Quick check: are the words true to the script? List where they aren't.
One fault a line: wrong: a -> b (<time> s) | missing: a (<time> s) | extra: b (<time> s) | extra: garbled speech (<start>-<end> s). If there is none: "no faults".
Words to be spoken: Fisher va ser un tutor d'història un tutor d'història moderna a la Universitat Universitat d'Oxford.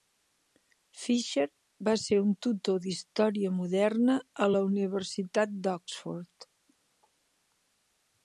missing: un tutor d'història (3.5 s)
missing: Universitat (5.6 s)